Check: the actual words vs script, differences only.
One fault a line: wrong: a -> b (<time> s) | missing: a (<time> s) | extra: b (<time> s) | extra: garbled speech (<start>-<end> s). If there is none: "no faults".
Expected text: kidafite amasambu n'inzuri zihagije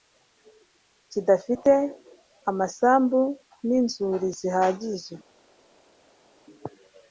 no faults